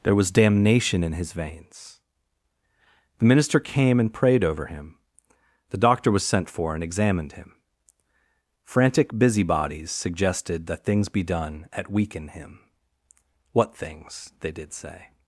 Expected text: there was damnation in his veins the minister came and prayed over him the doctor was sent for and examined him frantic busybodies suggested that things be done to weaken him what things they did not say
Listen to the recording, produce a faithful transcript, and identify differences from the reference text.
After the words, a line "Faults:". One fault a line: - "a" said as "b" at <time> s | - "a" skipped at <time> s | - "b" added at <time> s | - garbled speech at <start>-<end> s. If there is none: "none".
there was damnation in his veins the minister came and prayed over him the doctor was sent for and examined him frantic busybodies suggested that things be done at weaken him what things they did say
Faults:
- "to" said as "at" at 11.7 s
- "not" skipped at 14.7 s